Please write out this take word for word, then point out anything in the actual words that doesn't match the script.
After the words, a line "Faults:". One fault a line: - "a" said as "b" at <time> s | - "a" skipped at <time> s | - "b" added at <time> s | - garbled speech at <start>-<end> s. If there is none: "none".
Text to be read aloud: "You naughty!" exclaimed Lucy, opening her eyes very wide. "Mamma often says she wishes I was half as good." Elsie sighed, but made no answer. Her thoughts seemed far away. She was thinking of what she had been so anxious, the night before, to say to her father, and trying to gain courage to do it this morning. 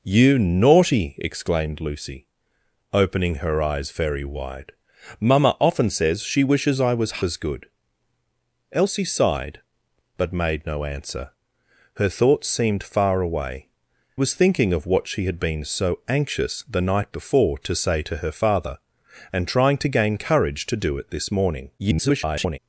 "You naughty!" exclaimed Lucy, opening her eyes very wide. "Mamma often says she wishes I was as good." Elsie sighed, but made no answer. Her thoughts seemed far away. Was thinking of what she had been so anxious, the night before, to say to her father, and trying to gain courage to do it this morning. [garbled]
Faults:
- "half" skipped at 7.2 s
- "She" skipped at 13.7 s
- garbled speech at 21.8-22.6 s